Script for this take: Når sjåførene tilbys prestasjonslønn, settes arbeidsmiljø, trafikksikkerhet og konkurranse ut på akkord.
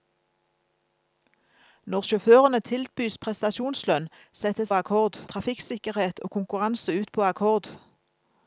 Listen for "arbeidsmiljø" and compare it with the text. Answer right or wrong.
wrong